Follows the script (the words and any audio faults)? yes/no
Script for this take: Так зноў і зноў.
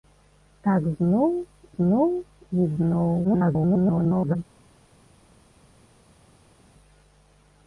no